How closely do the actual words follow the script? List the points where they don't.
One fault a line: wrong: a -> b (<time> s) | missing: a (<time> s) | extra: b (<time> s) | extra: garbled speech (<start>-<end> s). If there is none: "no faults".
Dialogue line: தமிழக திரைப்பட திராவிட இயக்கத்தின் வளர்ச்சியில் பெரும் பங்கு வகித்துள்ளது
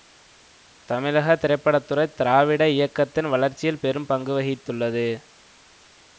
extra: துறை (1.8 s)